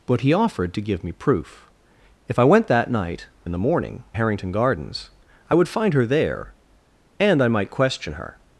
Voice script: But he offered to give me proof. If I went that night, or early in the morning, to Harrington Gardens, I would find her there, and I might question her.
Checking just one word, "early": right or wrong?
wrong